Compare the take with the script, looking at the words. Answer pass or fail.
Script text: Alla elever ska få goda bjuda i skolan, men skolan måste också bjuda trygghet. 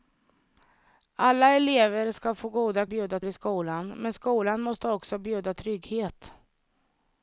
pass